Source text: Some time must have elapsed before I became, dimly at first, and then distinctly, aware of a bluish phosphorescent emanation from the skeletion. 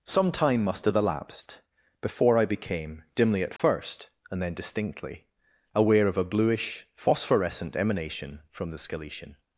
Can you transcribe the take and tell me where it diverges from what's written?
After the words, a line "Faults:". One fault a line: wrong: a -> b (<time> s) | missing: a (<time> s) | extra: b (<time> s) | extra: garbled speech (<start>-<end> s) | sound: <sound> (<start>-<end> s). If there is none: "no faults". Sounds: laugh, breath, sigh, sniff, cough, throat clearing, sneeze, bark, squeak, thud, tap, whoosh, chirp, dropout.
Some time must have elapsed before I became, dimly at first, and then distinctly, aware of a bluish phosphorescent emanation from the skeletion.
Faults:
sound: dropout (3.6-3.6 s)